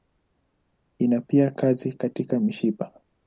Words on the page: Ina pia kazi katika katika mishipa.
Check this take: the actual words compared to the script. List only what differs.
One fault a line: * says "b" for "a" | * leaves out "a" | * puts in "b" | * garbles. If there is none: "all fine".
* leaves out "katika"